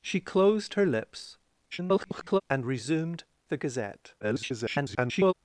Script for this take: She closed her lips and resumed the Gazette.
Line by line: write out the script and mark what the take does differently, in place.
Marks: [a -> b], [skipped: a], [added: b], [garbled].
She closed her lips [garbled] and resumed the Gazette. [garbled]